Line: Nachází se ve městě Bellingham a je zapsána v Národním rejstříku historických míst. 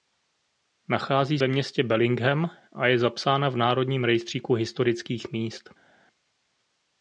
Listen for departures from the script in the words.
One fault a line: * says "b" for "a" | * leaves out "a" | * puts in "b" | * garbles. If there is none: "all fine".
* leaves out "se"